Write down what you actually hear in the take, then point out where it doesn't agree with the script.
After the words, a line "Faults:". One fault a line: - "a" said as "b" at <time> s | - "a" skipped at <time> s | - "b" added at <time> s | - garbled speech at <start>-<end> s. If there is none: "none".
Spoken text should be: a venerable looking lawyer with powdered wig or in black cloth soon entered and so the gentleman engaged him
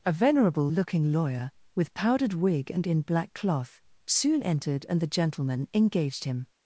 a venerable looking lawyer with powdered wig and in black cloth soon entered and the gentleman engaged him
Faults:
- "or" said as "and" at 2.7 s
- "so" skipped at 5.0 s